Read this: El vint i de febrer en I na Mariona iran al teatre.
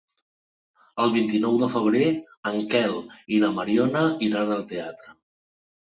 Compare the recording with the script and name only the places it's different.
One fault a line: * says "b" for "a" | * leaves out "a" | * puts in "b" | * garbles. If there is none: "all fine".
* puts in "nou"
* puts in "Quel"